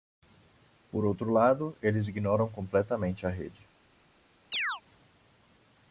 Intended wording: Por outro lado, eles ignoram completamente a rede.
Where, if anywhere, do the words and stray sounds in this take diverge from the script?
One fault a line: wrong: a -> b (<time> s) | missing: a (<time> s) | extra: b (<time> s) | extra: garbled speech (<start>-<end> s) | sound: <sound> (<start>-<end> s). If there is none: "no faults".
sound: chirp (4.5-4.8 s)